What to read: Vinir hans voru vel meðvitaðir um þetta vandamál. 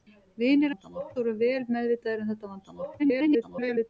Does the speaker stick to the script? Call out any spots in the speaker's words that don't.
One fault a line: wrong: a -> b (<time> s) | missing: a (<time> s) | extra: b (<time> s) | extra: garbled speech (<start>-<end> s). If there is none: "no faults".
wrong: hans -> vandamál (0.7 s)
extra: garbled speech (3.0-3.9 s)